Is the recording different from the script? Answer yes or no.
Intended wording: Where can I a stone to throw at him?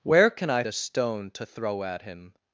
no